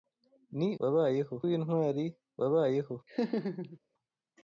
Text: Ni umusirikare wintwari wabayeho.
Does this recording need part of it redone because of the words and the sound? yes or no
yes